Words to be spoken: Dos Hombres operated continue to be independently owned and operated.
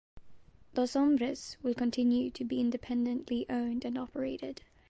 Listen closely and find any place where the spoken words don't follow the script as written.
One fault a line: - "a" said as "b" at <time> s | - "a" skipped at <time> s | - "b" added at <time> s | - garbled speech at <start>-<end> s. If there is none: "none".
- "operated" said as "will" at 1.6 s